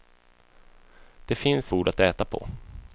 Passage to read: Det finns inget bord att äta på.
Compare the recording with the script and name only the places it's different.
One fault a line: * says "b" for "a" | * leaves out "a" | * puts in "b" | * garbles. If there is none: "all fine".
* leaves out "inget"